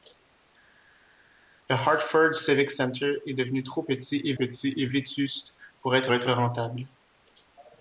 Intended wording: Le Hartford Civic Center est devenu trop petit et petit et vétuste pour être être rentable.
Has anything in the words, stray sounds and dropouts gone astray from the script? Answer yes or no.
no